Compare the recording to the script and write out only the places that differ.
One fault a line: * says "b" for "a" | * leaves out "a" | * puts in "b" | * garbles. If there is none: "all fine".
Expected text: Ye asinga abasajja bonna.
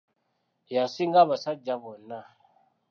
all fine